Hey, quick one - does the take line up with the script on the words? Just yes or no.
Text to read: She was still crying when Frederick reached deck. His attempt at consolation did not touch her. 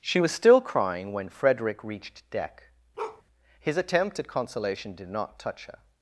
yes